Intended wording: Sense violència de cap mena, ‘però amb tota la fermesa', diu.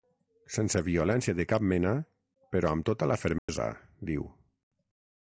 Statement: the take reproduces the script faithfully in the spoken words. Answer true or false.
true